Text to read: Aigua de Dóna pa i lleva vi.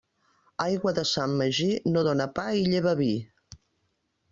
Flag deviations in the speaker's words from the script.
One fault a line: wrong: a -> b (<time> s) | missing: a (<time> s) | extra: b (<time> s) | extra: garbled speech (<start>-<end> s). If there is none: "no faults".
extra: Sant Magí no (1.1 s)